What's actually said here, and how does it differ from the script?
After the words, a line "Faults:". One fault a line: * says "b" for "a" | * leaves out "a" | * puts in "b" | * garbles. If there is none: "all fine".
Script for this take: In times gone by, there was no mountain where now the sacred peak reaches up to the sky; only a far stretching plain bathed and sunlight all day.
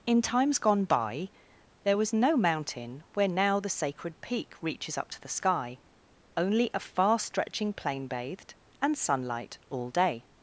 In times gone by, there was no mountain where now the sacred peak reaches up to the sky; only a far stretching plain bathed and sunlight all day.
Faults:
all fine